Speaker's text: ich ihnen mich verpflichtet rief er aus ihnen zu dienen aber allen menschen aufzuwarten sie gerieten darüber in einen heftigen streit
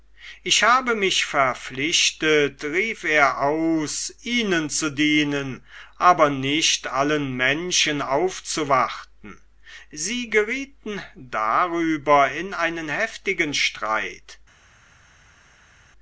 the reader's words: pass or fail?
fail